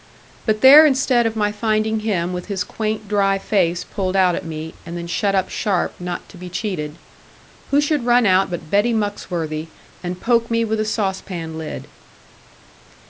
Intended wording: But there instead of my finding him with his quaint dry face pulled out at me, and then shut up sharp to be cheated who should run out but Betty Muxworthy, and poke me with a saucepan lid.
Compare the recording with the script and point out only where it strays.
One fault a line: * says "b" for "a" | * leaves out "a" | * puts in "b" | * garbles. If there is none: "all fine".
* puts in "not"